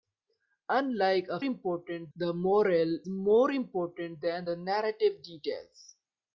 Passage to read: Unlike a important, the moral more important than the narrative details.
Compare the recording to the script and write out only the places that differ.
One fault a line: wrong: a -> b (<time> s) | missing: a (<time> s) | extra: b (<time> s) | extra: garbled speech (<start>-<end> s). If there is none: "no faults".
no faults